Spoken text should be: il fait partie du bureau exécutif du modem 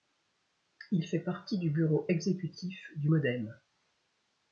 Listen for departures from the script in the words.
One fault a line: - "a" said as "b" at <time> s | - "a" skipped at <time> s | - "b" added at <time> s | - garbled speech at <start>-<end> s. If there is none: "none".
none